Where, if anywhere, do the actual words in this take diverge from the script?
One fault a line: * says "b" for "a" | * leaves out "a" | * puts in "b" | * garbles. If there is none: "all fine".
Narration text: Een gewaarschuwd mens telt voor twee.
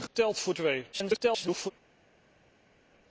* leaves out "gewaarschuwd mens"
* garbles